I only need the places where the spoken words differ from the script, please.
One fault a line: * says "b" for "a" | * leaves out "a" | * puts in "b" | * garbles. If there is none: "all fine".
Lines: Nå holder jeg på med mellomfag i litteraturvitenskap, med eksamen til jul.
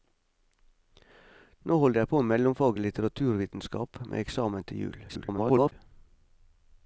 * garbles